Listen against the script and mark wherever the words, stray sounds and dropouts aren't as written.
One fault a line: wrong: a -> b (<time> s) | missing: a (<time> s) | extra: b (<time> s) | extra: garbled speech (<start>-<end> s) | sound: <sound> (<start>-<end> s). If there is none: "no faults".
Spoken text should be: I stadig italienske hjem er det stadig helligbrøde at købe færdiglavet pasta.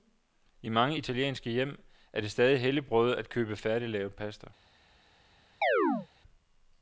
wrong: stadig -> mange (0.7 s)
sound: chirp (5.6-6.1 s)